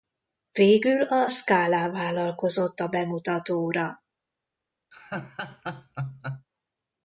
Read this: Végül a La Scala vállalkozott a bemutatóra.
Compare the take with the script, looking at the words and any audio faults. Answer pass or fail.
fail